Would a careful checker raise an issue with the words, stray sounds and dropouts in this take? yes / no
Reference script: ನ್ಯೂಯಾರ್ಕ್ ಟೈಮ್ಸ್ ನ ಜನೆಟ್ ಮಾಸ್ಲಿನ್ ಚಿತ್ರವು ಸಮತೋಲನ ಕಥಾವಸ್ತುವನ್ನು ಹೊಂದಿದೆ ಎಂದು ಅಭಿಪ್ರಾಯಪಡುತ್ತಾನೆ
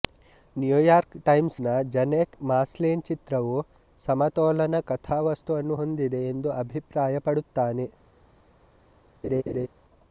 yes